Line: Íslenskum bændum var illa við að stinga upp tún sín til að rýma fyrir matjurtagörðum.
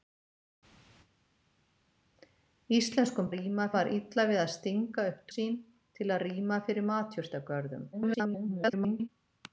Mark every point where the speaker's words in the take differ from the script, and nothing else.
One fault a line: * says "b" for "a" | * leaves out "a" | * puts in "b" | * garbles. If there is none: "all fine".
* says "rýma" for "bændum"
* leaves out "tún"
* garbles